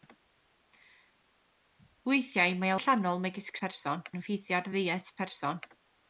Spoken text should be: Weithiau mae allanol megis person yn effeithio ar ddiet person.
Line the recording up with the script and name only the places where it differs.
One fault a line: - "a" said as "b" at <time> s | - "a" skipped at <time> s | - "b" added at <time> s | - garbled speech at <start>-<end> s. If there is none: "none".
none